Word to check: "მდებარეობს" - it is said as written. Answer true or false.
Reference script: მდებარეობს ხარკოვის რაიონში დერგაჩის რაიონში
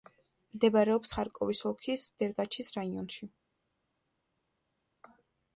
true